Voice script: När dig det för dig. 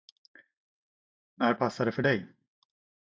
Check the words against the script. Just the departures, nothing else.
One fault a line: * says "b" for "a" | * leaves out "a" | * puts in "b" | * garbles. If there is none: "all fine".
* says "passar" for "dig"